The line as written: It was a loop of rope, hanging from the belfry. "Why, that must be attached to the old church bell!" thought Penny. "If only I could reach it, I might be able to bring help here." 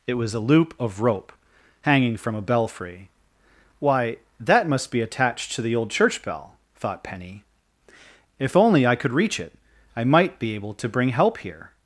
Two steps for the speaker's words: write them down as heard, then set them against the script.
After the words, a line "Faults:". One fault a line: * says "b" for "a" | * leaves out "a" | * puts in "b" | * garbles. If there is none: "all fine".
It was a loop of rope, hanging from a belfry. "Why, that must be attached to the old church bell!" thought Penny. "If only I could reach it, I might be able to bring help here."
Faults:
* says "a" for "the"